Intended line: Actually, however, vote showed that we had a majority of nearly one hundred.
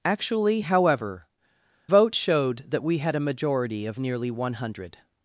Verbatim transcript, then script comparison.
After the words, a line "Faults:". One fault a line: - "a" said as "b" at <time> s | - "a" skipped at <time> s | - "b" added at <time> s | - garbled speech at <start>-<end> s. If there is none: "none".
Actually, however, vote showed that we had a majority of nearly one hundred.
Faults:
none